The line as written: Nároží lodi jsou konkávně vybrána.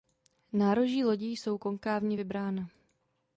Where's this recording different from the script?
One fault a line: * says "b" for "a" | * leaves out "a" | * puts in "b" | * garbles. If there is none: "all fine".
all fine